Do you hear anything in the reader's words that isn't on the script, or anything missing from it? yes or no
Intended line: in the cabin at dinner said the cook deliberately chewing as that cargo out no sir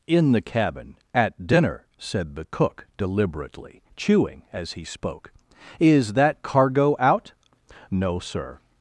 yes